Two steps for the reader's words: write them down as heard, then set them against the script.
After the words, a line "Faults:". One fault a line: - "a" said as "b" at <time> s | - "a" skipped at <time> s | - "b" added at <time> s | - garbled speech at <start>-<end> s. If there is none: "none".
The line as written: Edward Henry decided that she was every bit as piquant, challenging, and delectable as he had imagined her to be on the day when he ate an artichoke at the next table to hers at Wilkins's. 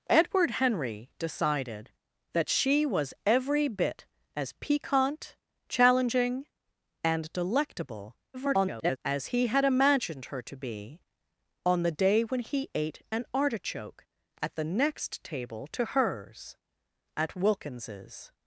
Edward Henry decided that she was every bit as piquant, challenging, and delectable [garbled] as he had imagined her to be on the day when he ate an artichoke at the next table to hers at Wilkins's.
Faults:
- garbled speech at 8.3-9.0 s